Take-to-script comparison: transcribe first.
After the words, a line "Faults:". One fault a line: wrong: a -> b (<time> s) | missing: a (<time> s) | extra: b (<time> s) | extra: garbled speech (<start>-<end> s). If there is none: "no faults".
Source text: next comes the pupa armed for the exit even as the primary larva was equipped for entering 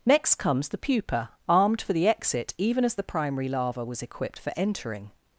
next comes the pupa armed for the exit even as the primary larva was equipped for entering
Faults:
no faults